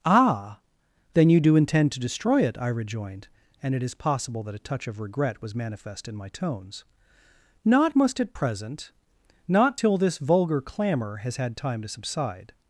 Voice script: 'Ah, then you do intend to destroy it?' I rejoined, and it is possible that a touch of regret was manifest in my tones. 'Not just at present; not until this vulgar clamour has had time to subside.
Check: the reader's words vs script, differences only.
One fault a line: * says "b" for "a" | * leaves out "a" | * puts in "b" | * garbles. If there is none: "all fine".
* says "must" for "just"
* says "till" for "until"